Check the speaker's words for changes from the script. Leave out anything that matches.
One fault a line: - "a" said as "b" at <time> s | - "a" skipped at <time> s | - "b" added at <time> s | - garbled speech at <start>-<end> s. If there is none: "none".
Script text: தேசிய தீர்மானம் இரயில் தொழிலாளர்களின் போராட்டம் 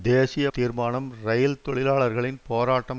none